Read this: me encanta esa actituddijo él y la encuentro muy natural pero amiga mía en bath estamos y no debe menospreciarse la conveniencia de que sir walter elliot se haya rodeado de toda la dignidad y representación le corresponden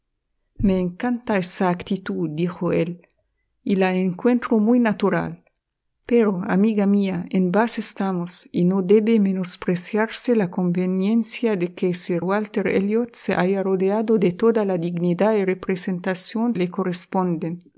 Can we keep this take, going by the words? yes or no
yes